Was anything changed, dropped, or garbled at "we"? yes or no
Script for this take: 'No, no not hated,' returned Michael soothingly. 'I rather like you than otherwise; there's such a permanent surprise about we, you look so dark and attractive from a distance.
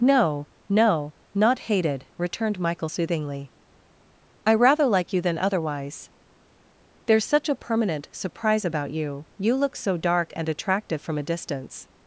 yes